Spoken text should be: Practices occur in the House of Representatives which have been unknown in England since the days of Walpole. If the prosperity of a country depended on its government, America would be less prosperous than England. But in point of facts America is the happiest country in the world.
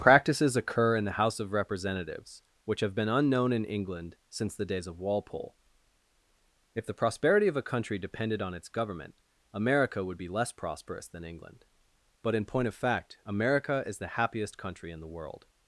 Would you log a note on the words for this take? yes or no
yes